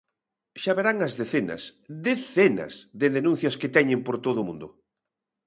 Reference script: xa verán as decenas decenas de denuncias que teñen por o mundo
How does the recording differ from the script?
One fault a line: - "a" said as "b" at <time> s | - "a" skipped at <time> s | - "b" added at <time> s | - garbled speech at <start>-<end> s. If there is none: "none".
- "todo" added at 4.2 s